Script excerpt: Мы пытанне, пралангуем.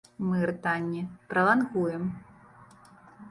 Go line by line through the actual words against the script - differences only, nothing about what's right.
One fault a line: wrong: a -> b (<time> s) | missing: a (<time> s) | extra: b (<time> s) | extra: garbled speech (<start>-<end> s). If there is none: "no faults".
no faults